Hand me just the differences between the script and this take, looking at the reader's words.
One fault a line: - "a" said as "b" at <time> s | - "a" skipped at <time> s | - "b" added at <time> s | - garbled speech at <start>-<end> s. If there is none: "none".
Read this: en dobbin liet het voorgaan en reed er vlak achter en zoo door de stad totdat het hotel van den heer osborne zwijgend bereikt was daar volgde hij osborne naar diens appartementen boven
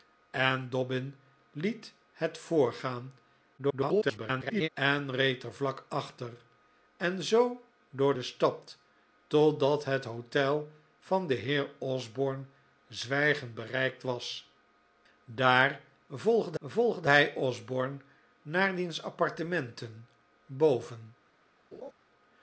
- garbled speech at 3.6-4.7 s
- "volgde" added at 16.6 s